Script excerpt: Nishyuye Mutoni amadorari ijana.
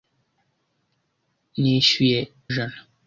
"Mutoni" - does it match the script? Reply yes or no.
no